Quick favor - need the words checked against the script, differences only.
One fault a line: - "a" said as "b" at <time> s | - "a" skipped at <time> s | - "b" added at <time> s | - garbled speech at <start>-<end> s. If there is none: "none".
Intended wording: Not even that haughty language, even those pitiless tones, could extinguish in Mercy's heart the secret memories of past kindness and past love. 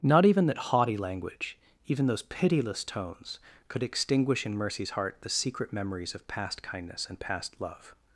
none